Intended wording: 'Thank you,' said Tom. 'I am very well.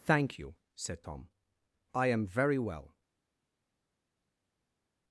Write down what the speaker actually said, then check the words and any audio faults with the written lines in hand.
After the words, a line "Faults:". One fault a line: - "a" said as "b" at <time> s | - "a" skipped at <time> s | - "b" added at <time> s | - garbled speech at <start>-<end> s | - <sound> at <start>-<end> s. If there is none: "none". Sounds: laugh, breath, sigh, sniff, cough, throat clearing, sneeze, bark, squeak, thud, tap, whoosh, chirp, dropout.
'Thank you,' said Tom. 'I am very well.
Faults:
none